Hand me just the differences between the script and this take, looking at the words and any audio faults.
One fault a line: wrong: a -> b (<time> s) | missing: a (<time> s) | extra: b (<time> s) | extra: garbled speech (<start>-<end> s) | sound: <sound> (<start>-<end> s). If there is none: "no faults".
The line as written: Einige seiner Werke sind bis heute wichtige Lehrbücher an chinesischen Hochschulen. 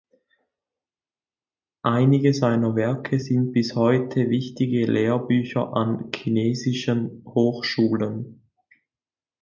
no faults